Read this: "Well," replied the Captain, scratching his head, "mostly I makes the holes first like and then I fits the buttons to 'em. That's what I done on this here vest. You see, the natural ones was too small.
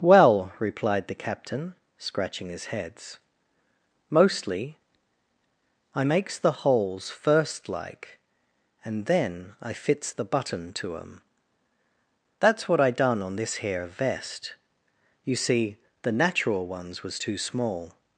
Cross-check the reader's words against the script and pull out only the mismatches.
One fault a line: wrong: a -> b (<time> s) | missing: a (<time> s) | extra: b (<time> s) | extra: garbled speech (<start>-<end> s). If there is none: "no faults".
wrong: head -> heads (2.6 s)
wrong: buttons -> button (10.2 s)